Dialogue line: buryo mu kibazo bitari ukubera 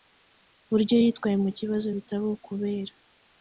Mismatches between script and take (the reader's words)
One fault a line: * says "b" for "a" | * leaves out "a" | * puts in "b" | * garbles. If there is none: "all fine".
* puts in "yitwaye"